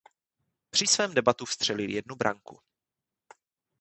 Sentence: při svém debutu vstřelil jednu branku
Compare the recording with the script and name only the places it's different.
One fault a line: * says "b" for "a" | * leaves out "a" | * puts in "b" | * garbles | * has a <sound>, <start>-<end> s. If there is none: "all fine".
all fine